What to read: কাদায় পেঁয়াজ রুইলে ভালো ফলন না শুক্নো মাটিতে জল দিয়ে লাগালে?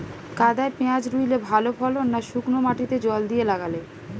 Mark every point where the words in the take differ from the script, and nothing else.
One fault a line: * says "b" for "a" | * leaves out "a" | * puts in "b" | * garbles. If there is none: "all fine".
all fine